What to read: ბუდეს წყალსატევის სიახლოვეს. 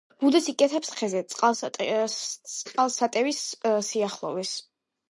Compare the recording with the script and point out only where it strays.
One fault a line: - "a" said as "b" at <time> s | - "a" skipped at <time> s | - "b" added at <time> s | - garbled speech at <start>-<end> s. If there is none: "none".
- "იკეთებს ხეზე" added at 0.5 s